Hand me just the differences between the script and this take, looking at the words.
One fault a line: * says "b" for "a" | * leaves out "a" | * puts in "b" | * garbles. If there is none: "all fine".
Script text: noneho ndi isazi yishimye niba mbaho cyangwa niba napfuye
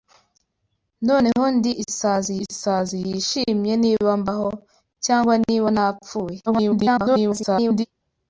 * puts in "isazi"
* garbles